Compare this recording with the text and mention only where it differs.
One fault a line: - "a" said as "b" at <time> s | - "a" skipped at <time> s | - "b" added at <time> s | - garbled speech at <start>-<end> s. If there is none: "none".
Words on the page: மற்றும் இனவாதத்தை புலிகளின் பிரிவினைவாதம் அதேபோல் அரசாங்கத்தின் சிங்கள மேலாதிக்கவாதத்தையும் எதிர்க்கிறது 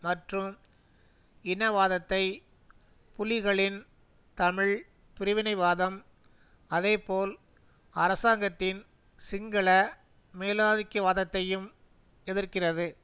- "தமிழ்" added at 4.4 s